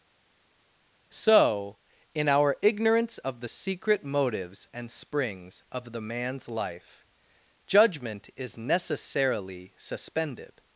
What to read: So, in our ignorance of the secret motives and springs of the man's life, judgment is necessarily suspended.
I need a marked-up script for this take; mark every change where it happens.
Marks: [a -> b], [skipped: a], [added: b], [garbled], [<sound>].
So, in our ignorance of the secret motives and springs of the man's life, judgment is necessarily suspended.